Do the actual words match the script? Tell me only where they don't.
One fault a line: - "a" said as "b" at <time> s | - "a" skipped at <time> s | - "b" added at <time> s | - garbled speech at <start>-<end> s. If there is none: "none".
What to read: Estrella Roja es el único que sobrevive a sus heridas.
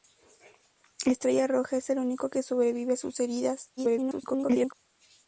- garbled speech at 3.8-4.7 s